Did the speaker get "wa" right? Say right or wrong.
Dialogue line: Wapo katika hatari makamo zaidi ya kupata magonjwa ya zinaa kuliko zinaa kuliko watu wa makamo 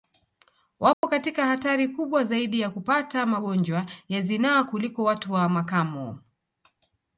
right